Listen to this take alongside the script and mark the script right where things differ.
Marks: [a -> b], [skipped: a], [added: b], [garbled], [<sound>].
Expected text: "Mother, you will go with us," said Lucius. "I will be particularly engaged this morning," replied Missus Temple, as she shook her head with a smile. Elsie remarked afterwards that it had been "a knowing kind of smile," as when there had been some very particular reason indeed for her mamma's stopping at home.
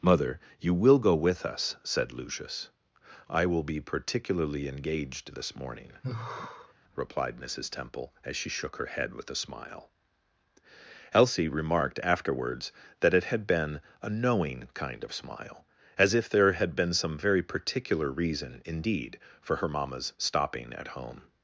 "Mother, you will go with us," said Lucius. "I will be particularly engaged this morning," [sigh] replied Missus Temple, as she shook her head with a smile. Elsie remarked afterwards that it had been "a knowing kind of smile," as [when -> if] there had been some very particular reason indeed for her mamma's stopping at home.